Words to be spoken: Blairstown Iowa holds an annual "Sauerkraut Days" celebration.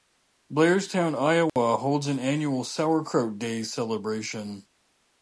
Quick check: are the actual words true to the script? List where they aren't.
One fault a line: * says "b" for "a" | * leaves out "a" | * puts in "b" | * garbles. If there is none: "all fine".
all fine